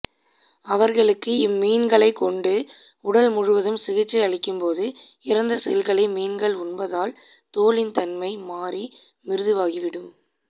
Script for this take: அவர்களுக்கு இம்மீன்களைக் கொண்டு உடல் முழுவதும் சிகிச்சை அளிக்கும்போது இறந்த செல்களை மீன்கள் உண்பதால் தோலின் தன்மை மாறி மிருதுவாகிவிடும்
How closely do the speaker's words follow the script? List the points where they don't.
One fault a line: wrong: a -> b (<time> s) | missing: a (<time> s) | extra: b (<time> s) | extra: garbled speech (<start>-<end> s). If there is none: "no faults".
no faults